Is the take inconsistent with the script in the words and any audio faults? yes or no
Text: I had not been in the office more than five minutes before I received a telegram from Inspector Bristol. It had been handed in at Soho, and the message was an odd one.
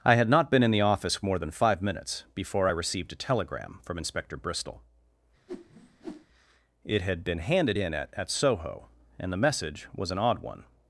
yes